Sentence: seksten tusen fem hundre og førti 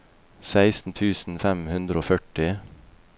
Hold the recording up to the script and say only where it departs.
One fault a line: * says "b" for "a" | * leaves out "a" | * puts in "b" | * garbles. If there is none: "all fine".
all fine